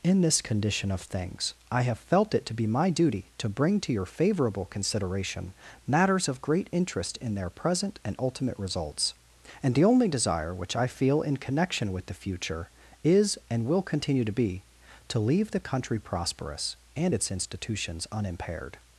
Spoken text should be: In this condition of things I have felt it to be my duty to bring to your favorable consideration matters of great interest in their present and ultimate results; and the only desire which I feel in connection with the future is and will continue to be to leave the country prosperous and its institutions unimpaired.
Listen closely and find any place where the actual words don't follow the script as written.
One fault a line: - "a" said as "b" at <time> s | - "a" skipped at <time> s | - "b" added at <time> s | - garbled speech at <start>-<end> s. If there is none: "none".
none